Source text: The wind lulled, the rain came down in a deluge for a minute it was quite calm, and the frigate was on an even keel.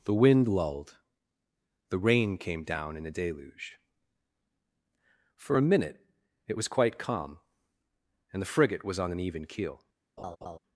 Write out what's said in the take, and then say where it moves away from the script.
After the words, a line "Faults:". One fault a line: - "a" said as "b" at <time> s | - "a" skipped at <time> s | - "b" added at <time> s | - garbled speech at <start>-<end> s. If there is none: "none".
The wind lulled, the rain came down in a deluge for a minute it was quite calm, and the frigate was on an even keel.
Faults:
none